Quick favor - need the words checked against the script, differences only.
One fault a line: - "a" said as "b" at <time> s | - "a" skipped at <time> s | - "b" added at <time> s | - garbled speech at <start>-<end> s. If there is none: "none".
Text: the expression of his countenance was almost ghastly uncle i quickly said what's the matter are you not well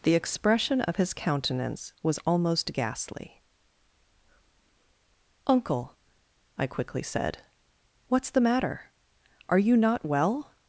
none